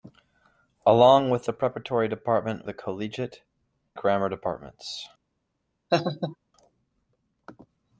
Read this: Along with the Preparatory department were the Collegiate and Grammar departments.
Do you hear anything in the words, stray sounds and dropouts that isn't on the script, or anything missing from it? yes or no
yes